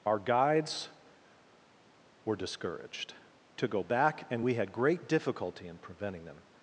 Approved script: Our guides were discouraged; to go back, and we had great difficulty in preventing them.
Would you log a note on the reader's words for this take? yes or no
no